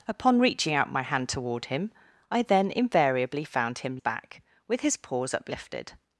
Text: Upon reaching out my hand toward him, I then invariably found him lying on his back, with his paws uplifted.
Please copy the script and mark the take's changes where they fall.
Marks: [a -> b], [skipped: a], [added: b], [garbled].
Upon reaching out my hand toward him, I then invariably found him [skipped: lying on his] back, with his paws uplifted.